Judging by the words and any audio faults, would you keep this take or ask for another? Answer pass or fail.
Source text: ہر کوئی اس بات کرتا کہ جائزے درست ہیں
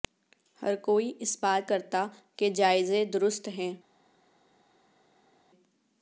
pass